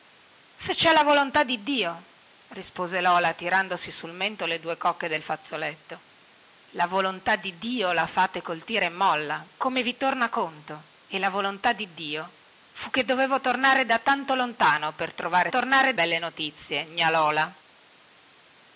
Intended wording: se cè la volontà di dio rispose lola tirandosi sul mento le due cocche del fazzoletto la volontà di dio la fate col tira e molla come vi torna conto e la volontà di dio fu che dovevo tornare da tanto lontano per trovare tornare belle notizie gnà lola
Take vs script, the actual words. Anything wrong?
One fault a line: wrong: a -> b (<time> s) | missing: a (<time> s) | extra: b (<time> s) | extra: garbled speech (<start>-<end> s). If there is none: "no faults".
no faults